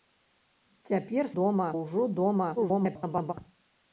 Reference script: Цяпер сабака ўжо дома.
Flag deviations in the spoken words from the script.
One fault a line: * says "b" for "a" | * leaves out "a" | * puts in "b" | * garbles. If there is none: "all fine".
* says "дома" for "сабака"
* garbles